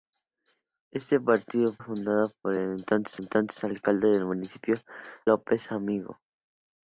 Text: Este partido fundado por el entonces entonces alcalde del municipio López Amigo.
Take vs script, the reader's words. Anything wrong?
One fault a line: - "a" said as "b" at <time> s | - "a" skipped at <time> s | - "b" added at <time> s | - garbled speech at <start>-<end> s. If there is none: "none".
none